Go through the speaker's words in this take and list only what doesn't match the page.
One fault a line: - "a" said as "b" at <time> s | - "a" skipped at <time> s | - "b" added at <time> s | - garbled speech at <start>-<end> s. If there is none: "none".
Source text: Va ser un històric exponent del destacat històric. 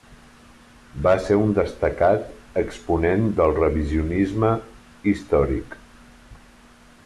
- "històric" said as "destacat" at 1.6 s
- "destacat" said as "revisionisme" at 3.6 s